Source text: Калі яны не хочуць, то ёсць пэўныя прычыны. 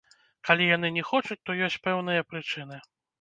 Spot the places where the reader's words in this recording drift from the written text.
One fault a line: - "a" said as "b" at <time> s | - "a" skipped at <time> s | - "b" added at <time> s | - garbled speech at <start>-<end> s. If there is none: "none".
none